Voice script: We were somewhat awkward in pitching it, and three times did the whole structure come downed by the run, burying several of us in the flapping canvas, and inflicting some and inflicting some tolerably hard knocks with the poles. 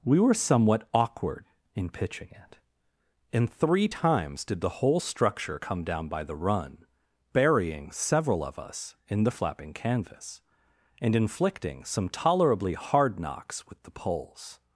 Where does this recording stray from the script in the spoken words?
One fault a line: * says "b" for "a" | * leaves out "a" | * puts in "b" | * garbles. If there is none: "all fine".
* says "down" for "downed"
* leaves out "and inflicting some"